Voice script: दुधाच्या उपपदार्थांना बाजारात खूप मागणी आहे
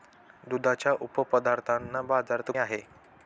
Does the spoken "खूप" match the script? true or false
false